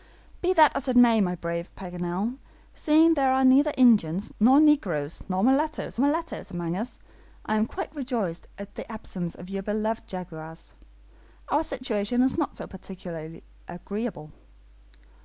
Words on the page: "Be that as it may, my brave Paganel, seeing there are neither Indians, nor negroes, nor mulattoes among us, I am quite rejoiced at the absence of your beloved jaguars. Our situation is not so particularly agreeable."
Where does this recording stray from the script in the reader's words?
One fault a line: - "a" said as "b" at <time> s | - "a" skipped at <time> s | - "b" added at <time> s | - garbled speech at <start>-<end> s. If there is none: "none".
- "mulattoes" added at 6.0 s